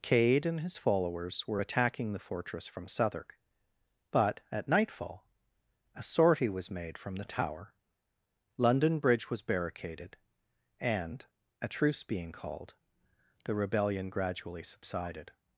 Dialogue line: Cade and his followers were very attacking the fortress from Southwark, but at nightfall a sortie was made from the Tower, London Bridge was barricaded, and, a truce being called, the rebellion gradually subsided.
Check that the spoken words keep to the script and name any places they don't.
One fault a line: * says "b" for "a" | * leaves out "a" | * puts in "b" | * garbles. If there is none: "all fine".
* leaves out "very"